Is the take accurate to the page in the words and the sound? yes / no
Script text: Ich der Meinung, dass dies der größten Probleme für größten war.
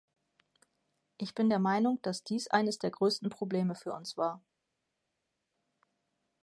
no